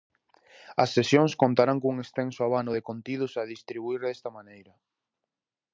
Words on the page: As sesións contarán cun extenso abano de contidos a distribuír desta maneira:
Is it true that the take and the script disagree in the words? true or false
false